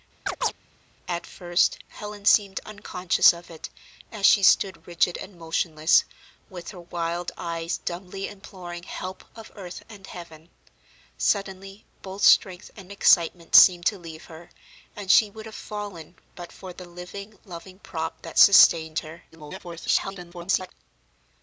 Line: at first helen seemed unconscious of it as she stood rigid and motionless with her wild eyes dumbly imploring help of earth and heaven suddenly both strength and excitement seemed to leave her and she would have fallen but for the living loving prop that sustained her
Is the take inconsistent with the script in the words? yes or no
yes